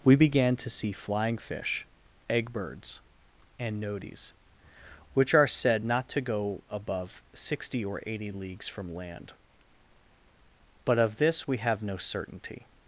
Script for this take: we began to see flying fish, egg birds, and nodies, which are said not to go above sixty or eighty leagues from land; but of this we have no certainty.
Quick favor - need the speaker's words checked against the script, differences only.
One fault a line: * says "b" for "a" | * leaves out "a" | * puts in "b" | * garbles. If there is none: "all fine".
all fine